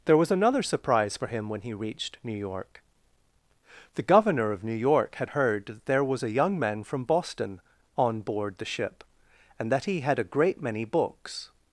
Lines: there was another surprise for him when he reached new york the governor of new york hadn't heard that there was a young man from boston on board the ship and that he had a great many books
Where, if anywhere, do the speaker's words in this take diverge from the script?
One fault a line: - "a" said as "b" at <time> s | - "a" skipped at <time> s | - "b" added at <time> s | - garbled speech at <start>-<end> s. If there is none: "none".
- "hadn't" said as "had" at 5.2 s